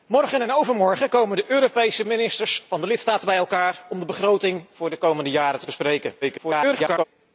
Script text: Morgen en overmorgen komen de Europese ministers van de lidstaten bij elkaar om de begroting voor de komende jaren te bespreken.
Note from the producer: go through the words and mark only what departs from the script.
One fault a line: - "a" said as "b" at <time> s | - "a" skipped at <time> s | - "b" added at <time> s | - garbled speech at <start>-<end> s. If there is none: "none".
- garbled speech at 6.2-7.0 s